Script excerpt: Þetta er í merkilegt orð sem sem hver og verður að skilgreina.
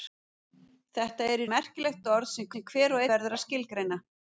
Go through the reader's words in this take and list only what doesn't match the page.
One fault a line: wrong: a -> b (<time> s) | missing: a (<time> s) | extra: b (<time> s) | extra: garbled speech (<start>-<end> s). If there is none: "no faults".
no faults